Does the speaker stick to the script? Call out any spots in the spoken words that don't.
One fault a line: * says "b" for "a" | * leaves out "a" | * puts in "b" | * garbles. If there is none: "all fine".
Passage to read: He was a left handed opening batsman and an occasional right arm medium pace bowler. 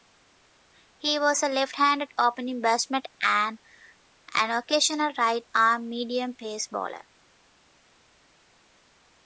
all fine